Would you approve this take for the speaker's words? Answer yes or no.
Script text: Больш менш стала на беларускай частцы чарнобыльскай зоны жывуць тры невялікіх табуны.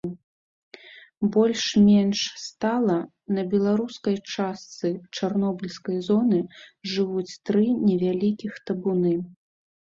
yes